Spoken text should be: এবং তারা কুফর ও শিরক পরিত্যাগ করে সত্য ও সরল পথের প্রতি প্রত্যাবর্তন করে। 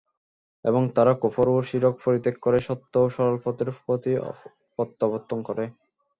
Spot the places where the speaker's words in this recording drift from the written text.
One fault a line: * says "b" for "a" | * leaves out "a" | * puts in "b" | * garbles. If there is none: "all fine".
all fine